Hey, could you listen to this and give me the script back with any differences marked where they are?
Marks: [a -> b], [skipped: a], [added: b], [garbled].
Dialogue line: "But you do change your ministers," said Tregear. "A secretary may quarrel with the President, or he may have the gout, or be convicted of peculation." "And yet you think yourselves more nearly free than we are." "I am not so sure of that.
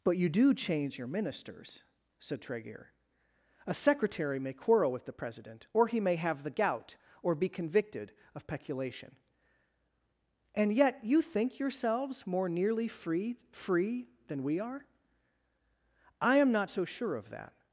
"But you do change your ministers," said Tregear. "A secretary may quarrel with the President, or he may have the gout, or be convicted of peculation." "And yet you think yourselves more nearly free [added: free] than we are." "I am not so sure of that.